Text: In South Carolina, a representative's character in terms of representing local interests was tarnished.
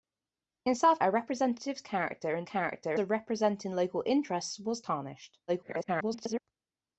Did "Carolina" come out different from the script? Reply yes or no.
yes